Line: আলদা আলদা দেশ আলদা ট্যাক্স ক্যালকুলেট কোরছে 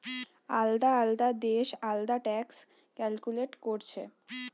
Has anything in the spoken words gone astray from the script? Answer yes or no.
no